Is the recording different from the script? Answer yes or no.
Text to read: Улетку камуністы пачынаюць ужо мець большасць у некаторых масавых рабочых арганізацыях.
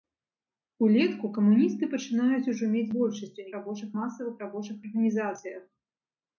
yes